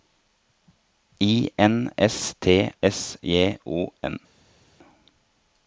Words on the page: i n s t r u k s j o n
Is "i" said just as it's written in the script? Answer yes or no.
yes